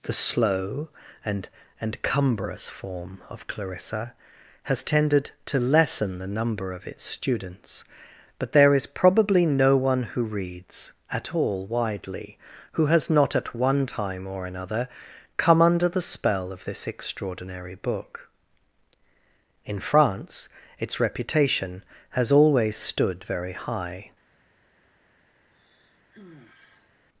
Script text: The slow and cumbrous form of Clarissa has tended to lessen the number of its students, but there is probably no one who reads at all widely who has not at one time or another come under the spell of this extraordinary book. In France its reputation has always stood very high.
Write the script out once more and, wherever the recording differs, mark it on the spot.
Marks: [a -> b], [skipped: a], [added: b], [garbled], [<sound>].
The slow and [added: and] cumbrous form of Clarissa has tended to lessen the number of its students, but there is probably no one who reads at all widely who has not at one time or another come under the spell of this extraordinary book. In France its reputation has always stood very high. [sigh]